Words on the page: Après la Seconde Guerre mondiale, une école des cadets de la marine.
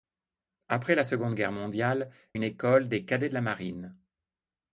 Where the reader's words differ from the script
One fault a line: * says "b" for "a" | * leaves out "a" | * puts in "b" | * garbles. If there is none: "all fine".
all fine